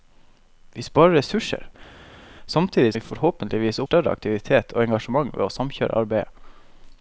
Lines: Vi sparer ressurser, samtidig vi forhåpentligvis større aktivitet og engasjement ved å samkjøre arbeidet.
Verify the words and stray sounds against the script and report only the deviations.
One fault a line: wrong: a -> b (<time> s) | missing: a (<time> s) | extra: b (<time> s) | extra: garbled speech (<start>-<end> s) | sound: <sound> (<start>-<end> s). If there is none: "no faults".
no faults